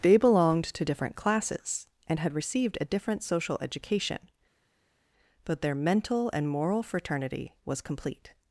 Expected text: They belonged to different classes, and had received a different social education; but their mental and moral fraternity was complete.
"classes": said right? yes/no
yes